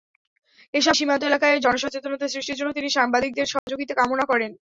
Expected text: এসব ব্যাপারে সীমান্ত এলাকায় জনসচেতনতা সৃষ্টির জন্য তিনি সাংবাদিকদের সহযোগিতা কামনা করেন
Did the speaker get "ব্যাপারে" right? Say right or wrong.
wrong